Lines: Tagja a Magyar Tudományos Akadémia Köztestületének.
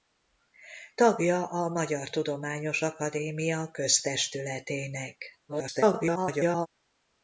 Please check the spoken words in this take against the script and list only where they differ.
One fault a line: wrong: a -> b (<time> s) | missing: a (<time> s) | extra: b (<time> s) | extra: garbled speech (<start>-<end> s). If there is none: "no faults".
extra: garbled speech (5.5-6.7 s)